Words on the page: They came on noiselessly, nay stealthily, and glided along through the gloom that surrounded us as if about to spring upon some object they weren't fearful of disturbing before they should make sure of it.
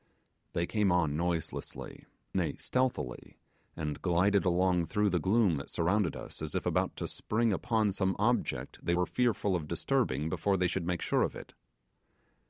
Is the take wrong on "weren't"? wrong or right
wrong